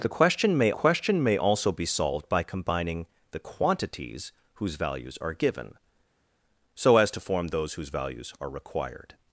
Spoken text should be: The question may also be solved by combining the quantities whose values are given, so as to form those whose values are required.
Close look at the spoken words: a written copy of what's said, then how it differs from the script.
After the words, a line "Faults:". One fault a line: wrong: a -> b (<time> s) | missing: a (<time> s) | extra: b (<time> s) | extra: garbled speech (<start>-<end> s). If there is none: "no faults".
The question may question may also be solved by combining the quantities whose values are given, so as to form those whose values are required.
Faults:
extra: question may (0.7 s)